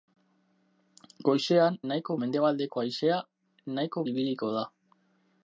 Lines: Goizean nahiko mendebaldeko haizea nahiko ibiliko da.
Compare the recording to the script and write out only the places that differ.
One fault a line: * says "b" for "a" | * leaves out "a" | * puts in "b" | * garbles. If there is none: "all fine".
all fine